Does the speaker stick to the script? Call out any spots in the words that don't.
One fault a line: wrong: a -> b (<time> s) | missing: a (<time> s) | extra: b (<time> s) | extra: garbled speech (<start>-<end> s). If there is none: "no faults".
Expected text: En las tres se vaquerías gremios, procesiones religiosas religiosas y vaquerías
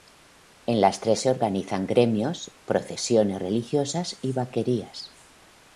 wrong: vaquerías -> organizan (1.3 s)
missing: religiosas (4.2 s)